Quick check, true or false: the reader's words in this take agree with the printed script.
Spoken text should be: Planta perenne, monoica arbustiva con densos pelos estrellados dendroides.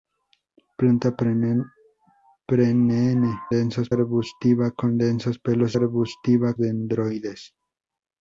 false